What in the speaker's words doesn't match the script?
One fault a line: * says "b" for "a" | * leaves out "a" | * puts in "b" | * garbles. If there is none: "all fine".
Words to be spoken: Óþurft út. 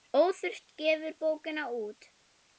* puts in "gefur bókina"